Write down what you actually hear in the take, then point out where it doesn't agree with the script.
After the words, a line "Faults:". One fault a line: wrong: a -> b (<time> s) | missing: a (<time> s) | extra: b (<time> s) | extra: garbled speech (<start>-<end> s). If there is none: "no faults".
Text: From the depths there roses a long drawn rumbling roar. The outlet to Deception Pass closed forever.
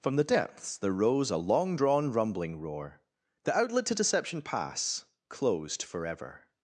From the depths there rose a long drawn rumbling roar. The outlet to Deception Pass closed forever.
Faults:
wrong: roses -> rose (0.9 s)